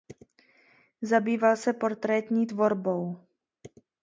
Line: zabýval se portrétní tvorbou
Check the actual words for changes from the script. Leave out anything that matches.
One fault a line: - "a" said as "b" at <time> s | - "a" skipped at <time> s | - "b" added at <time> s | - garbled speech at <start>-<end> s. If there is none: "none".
none